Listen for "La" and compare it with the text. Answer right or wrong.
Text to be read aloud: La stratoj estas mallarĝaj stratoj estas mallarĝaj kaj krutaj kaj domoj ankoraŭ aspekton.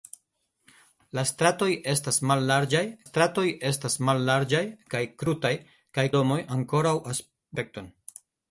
right